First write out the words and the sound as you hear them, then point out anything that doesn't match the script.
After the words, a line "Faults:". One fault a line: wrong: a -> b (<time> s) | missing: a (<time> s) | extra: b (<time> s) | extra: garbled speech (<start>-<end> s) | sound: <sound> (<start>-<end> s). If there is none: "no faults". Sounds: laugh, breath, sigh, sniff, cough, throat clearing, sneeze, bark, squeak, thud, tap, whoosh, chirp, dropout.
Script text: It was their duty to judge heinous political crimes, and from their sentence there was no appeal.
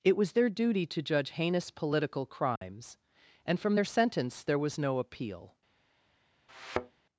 It was their duty to judge heinous political crimes, and from their sentence there was no appeal.
Faults:
sound: dropout (2.6-2.6 s)
sound: thud (6.5-7.0 s)